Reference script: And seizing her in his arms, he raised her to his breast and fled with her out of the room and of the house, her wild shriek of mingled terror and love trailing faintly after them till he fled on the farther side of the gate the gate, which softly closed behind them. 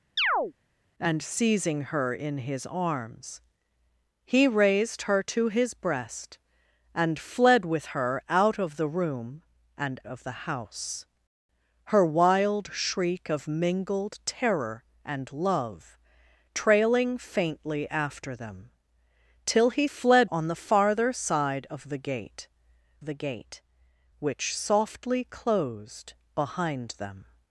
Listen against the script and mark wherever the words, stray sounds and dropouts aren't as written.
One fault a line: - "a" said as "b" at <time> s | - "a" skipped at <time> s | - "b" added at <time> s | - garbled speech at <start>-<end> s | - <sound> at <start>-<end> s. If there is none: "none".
- chirp at 0.2-0.5 s